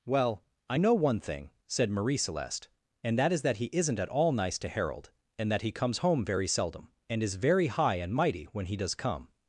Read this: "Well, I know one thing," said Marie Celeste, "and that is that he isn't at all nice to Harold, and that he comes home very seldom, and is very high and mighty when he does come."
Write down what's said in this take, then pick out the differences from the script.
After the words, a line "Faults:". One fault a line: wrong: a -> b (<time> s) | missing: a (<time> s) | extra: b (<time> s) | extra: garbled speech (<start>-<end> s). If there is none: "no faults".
"Well, I know one thing," said Marie Celeste, "and that is that he isn't at all nice to Harold, and that he comes home very seldom, and is very high and mighty when he does come."
Faults:
no faults